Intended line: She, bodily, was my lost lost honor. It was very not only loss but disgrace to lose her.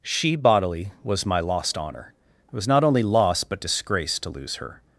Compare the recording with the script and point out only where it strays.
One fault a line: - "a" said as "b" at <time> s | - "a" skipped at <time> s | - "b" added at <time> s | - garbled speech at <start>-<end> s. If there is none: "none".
- "lost" skipped at 1.8 s
- "very" skipped at 2.7 s